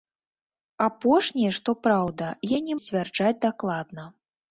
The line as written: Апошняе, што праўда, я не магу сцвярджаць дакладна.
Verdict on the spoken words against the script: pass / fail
fail